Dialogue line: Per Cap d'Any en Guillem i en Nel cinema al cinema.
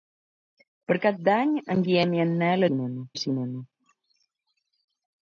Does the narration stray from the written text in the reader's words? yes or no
no